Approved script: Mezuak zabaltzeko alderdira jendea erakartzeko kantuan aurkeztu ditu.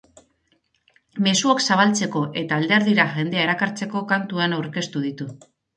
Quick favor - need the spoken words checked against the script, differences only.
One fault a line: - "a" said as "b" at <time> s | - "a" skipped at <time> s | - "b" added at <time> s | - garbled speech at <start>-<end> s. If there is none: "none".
- "eta" added at 2.4 s